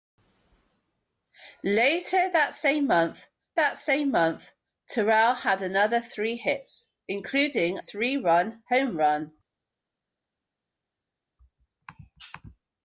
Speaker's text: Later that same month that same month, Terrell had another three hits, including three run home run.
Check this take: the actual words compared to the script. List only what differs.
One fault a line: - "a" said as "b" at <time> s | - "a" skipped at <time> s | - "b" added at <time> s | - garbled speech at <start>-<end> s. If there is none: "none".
none